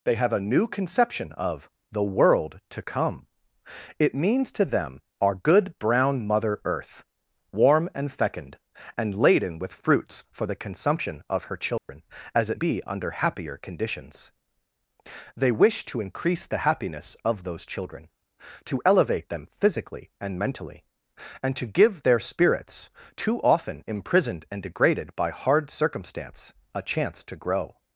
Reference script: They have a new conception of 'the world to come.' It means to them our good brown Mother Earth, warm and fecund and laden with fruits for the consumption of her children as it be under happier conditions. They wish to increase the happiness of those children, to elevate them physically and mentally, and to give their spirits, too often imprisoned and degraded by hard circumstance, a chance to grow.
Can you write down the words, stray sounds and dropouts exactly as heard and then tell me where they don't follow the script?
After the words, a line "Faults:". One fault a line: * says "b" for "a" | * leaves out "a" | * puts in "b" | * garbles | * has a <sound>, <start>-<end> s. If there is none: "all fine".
They have a new conception of 'the world to come.' It means to them our good brown Mother Earth, warm and fecund and laden with fruits for the consumption of her children as it be under happier conditions. They wish to increase the happiness of those children, to elevate them physically and mentally, and to give their spirits, too often imprisoned and degraded by hard circumstance, a chance to grow.
Faults:
* has a dropout, 11.8-11.9 s